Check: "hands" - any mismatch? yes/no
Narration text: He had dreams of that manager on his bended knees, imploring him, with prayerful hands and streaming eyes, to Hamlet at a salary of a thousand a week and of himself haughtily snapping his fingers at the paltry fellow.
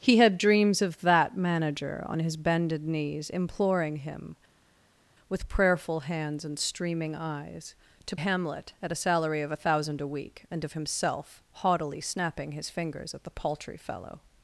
no